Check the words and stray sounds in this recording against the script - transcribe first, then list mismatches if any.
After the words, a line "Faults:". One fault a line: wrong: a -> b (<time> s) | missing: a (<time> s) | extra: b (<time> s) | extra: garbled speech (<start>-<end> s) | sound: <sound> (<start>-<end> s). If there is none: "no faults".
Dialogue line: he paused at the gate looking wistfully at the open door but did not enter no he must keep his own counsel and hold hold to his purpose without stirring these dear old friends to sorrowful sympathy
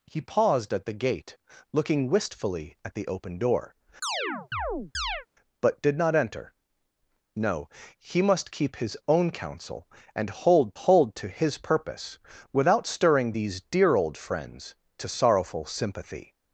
he paused at the gate looking wistfully at the open door but did not enter no he must keep his own counsel and hold hold to his purpose without stirring these dear old friends to sorrowful sympathy
Faults:
sound: chirp (4.0-5.3 s)